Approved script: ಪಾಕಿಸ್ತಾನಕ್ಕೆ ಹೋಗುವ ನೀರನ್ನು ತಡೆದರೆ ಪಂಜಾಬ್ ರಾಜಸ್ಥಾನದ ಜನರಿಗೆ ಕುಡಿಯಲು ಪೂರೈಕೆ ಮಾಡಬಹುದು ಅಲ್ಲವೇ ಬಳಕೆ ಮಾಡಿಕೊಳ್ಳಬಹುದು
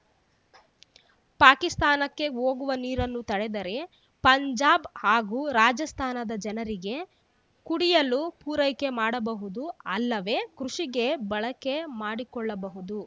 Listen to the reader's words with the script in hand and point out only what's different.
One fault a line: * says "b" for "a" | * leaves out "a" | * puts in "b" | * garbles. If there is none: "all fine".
* puts in "ಹಾಗೂ"
* puts in "ಕೃಷಿಗೆ"